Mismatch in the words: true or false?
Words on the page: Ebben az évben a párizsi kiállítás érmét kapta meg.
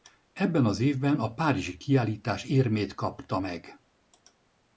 false